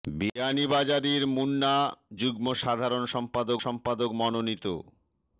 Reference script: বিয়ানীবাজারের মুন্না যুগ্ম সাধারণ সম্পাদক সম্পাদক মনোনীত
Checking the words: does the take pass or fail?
pass